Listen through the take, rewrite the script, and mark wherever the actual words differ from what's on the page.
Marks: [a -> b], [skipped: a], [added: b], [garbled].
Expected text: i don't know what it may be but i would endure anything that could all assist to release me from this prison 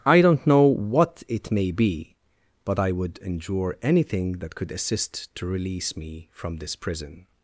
i don't know what it may be but i would endure anything that could [skipped: all] assist to release me from this prison